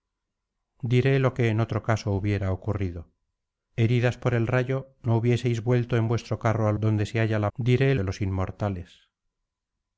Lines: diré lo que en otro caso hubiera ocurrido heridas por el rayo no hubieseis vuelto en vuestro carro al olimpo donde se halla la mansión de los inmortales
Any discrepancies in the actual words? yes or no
yes